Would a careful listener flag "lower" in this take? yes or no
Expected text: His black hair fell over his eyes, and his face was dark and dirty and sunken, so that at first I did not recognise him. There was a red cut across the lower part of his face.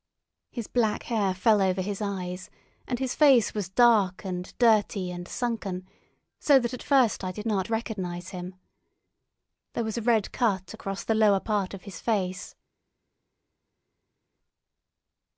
no